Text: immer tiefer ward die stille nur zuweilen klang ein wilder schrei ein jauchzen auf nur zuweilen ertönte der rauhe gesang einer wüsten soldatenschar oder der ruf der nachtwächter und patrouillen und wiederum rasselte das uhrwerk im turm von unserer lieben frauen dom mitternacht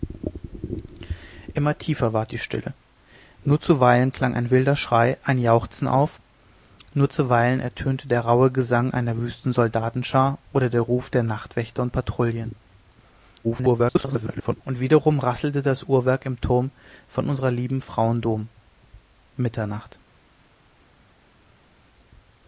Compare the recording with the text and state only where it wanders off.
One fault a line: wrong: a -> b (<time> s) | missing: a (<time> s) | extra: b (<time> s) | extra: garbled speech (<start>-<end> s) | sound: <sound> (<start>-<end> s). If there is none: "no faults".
extra: garbled speech (13.4-14.6 s)